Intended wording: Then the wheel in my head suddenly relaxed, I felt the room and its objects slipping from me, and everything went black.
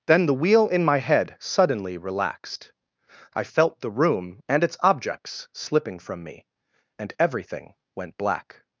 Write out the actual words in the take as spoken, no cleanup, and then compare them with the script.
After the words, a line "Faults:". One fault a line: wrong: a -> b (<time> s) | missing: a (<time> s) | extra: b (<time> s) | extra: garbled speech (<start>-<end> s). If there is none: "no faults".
Then the wheel in my head suddenly relaxed, I felt the room and its objects slipping from me, and everything went black.
Faults:
no faults